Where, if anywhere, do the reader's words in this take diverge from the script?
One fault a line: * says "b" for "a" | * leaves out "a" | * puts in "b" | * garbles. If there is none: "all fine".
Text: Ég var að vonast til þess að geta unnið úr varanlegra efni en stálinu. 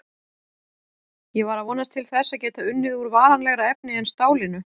all fine